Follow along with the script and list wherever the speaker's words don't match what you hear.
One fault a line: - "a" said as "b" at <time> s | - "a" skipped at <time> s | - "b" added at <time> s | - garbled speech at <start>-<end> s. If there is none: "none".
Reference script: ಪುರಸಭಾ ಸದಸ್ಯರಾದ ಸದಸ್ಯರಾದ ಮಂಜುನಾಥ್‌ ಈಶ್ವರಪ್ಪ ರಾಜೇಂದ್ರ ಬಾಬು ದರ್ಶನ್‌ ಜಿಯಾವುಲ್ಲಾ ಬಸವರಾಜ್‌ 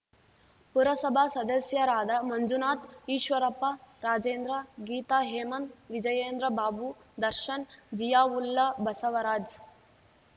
- "ಸದಸ್ಯರಾದ" skipped at 2.1 s
- "ಗೀತಾ ಹೇಮಂತ್ ವಿಜಯೇಂದ್ರ" added at 4.9 s